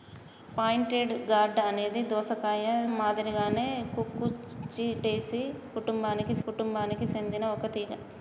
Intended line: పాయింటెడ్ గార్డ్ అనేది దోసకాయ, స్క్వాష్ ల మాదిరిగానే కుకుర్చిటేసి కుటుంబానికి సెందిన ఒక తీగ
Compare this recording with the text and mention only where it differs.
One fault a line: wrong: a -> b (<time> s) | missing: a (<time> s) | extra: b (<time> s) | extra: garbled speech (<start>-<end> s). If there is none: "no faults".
missing: స్క్వాష్ ల (2.6 s)
extra: కుటుంబానికి (6.4 s)